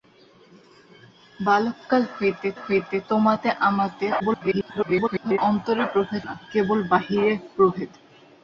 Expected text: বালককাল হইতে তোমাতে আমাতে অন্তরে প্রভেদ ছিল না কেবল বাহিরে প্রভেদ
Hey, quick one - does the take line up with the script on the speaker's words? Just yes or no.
no